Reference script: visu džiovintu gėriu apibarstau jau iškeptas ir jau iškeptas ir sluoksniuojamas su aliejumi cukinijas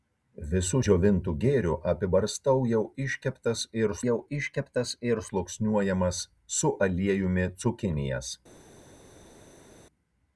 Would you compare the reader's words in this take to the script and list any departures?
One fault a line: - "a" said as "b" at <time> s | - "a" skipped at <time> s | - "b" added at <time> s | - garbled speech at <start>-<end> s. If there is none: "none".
none